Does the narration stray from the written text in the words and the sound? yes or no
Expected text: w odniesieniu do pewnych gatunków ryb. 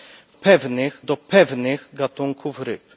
yes